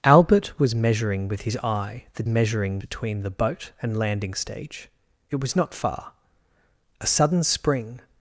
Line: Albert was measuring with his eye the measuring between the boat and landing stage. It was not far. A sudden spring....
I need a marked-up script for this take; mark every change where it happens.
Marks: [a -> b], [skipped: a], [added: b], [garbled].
Albert was measuring with his eye the measuring between the boat and landing stage. It was not far. A sudden spring....